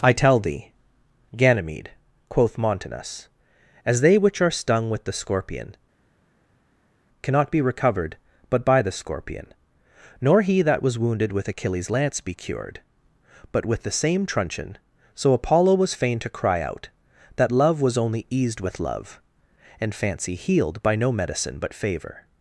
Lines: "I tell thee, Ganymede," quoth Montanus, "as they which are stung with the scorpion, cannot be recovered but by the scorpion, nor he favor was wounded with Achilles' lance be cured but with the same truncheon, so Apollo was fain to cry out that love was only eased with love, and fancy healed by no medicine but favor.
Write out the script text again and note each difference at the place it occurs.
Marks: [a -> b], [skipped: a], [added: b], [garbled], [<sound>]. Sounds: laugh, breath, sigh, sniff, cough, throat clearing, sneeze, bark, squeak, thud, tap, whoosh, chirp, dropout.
"I tell thee, Ganymede," quoth Montanus, "as they which are stung with the scorpion, cannot be recovered but by the scorpion, nor he [favor -> that] was wounded with Achilles' lance be cured but with the same truncheon, so Apollo was fain to cry out that love was only eased with love, and fancy healed by no medicine but favor.